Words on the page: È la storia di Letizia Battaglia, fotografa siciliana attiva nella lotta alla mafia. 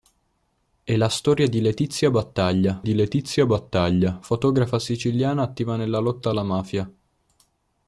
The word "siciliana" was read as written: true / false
true